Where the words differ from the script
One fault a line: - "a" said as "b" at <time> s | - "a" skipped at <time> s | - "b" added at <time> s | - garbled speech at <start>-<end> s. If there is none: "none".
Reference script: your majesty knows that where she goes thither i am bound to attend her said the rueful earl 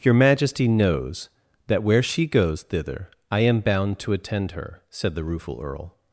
none